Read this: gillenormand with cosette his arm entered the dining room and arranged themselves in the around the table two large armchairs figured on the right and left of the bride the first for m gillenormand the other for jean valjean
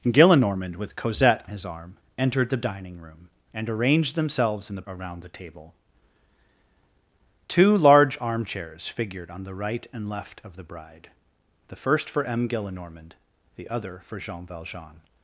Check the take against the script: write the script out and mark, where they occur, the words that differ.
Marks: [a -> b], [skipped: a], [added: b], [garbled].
gillenormand with cosette his arm entered the dining room and arranged themselves in the around the table two large armchairs figured on the right and left of the bride the first for m gillenormand the other for jean valjean